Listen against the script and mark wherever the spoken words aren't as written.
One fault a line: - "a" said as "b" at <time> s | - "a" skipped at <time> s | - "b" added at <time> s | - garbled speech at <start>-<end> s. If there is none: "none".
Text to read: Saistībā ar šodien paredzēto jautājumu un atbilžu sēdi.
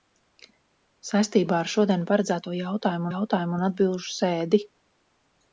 - "jautājumu" added at 3.1 s